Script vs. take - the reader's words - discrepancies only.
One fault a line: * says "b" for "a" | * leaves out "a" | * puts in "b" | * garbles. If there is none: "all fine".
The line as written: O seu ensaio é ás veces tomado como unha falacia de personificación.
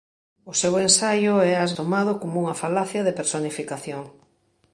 * leaves out "veces"